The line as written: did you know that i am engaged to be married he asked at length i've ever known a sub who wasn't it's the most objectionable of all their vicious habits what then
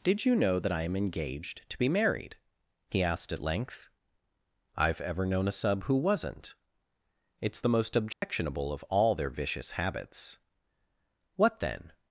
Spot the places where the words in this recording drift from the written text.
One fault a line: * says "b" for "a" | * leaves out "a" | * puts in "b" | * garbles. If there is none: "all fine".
all fine